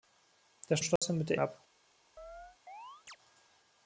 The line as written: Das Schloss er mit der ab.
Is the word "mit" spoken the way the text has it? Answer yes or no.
yes